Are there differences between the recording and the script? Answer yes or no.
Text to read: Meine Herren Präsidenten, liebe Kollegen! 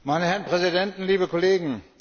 no